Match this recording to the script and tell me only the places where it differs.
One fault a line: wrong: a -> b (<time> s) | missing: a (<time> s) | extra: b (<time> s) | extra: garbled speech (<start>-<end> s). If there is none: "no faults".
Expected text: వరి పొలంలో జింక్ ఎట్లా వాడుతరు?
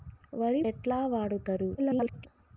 missing: పొలంలో జింక్ (0.6 s)
extra: garbled speech (1.8-2.3 s)